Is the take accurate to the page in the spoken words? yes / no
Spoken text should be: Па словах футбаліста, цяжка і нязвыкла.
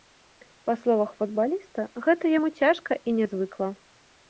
no